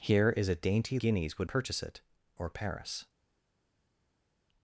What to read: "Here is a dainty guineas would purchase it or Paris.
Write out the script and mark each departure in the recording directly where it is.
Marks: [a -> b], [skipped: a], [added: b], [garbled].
"Here is a dainty guineas would purchase it or Paris.